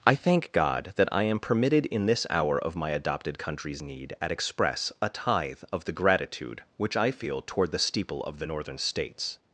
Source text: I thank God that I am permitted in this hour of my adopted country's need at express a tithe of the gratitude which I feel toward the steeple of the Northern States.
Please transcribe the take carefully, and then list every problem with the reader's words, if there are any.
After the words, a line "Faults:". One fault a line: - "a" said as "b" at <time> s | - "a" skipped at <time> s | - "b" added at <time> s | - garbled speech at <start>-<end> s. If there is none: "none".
I thank God that I am permitted in this hour of my adopted country's need at express a tithe of the gratitude which I feel toward the steeple of the Northern States.
Faults:
none